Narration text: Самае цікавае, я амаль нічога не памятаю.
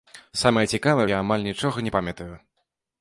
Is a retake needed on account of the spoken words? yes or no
no